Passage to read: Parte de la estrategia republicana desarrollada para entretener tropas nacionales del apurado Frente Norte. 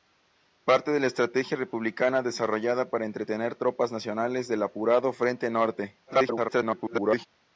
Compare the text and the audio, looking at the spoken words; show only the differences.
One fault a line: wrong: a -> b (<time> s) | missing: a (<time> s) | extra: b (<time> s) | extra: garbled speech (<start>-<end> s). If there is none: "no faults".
extra: garbled speech (6.1-7.3 s)